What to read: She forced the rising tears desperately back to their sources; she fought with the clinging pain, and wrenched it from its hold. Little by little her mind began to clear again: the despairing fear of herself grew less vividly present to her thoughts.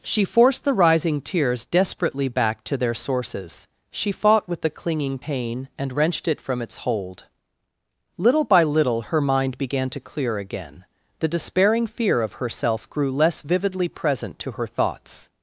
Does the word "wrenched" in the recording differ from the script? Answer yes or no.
no